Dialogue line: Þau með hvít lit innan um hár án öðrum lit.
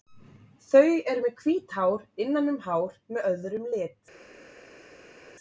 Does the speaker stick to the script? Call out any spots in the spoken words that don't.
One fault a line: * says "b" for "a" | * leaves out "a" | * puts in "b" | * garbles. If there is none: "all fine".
* puts in "eru"
* says "hár" for "lit"
* says "með" for "án"